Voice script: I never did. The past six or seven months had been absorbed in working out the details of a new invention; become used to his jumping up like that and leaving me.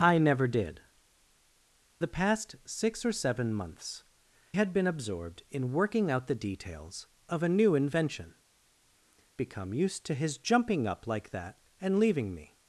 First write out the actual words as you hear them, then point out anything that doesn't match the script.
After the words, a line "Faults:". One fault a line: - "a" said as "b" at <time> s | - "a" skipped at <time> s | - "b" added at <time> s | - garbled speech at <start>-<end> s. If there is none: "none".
I never did. The past six or seven months had been absorbed in working out the details of a new invention; become used to his jumping up like that and leaving me.
Faults:
none